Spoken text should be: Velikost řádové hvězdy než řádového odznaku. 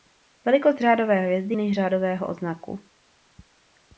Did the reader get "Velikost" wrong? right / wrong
right